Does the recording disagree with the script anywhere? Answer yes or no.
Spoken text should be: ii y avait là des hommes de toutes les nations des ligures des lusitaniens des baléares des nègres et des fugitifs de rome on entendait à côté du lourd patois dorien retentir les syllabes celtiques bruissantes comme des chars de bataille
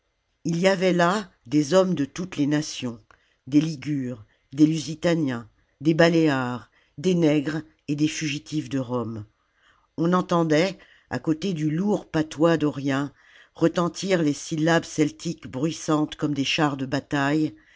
no